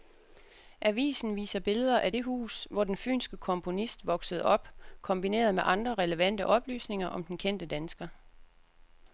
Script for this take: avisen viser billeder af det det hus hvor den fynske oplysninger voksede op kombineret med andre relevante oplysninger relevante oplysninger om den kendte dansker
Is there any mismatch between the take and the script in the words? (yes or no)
yes